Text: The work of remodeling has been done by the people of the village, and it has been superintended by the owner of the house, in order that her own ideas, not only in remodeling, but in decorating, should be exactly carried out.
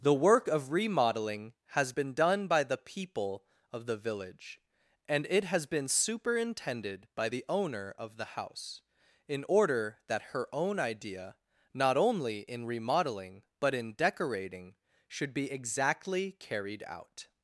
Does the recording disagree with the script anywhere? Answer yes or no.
yes